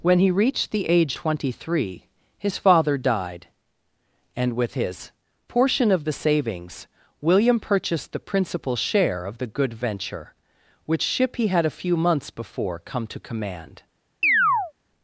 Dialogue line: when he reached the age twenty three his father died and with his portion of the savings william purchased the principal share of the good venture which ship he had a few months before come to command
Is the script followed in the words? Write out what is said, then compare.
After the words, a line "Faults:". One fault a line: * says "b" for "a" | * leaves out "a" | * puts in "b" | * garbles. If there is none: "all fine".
when he reached the age twenty three his father died and with his portion of the savings william purchased the principal share of the good venture which ship he had a few months before come to command
Faults:
all fine